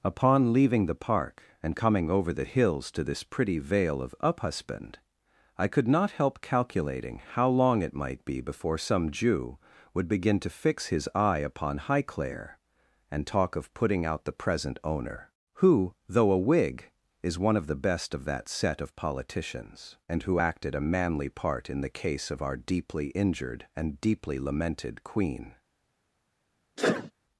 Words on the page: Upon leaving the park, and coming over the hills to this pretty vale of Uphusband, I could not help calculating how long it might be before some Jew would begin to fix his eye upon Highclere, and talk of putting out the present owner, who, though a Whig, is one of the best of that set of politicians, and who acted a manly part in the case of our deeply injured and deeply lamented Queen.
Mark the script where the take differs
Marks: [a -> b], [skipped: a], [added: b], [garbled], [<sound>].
Upon leaving the park, and coming over the hills to this pretty vale of Uphusband, I could not help calculating how long it might be before some Jew would begin to fix his eye upon Highclere, and talk of putting out the present owner, who, though a Whig, is one of the best of that set of politicians, and who acted a manly part in the case of our deeply injured and deeply lamented Queen. [sneeze]